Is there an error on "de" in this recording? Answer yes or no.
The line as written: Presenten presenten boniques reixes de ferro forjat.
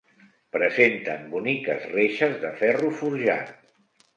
no